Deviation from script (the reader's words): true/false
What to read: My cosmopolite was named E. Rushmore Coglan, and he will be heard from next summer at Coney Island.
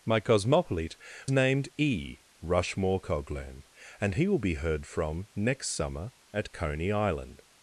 true